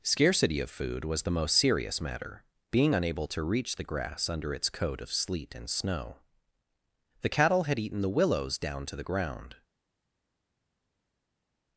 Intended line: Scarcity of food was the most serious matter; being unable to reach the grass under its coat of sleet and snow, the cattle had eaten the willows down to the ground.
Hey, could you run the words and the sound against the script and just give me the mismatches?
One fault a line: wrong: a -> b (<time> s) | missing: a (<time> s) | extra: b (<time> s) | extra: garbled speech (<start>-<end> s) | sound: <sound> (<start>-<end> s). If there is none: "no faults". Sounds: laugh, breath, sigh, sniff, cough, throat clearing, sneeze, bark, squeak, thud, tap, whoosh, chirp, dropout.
no faults